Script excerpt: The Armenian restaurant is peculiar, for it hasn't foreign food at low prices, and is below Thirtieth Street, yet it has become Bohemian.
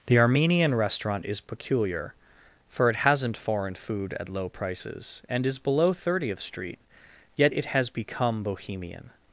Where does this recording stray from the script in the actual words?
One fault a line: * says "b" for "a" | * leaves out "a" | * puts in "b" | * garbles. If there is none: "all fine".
all fine